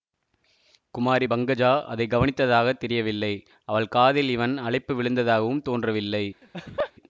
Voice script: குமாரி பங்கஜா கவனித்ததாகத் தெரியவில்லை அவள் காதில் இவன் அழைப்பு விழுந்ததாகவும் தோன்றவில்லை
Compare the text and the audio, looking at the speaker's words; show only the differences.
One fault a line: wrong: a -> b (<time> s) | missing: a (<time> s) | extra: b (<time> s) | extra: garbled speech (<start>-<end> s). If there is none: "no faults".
extra: அதை (1.8 s)